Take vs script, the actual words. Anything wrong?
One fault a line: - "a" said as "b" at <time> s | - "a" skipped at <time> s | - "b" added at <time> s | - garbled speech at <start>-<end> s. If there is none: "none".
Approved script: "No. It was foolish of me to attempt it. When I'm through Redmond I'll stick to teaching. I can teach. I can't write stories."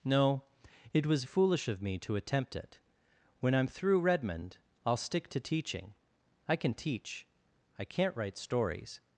none